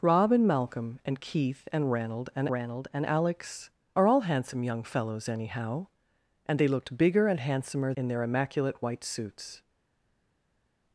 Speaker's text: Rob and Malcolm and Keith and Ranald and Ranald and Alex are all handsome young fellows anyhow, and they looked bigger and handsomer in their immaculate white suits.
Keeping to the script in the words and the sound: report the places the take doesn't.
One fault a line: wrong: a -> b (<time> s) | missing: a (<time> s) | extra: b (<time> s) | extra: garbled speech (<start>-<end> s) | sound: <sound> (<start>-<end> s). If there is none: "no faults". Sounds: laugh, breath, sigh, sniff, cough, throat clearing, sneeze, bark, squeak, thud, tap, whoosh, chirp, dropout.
no faults